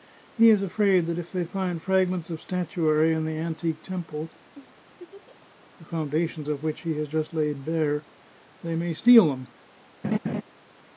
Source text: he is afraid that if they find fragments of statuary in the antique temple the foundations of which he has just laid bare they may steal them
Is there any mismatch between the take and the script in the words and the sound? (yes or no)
yes